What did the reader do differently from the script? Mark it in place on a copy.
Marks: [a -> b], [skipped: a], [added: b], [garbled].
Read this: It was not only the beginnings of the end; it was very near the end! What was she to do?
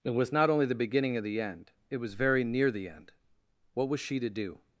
It was not only the [beginnings -> beginning] of the end; it was very near the end! What was she to do?